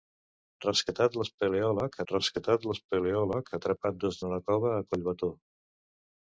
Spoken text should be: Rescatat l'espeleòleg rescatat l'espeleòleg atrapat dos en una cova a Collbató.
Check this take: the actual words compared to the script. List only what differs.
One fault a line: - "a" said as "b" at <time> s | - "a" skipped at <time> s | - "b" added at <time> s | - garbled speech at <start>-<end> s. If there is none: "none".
none